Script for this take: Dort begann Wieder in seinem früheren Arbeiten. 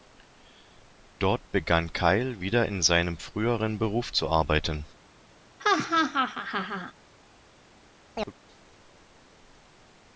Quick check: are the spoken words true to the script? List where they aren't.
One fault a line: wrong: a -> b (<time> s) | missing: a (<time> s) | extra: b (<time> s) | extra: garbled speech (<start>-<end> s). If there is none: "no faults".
extra: Kyle (1.9 s)
extra: Beruf zu (3.8 s)